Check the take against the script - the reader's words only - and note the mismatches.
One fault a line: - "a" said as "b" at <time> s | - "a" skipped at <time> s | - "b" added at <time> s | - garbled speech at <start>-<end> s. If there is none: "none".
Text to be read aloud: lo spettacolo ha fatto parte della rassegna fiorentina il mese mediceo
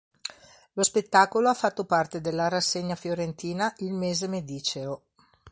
none